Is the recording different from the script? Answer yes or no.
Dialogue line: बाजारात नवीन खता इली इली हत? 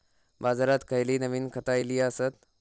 yes